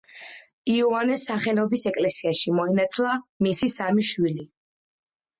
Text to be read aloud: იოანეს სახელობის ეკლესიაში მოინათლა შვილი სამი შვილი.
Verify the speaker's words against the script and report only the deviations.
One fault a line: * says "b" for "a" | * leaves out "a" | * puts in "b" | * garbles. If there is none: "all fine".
* says "მისი" for "შვილი"